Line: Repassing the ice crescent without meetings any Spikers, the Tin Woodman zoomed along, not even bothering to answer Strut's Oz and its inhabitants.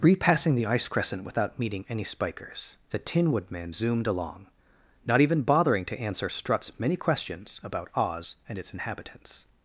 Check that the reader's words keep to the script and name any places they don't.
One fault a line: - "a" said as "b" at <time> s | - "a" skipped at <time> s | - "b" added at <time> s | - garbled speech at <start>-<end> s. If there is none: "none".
- "meetings" said as "meeting" at 1.6 s
- "many questions about" added at 6.8 s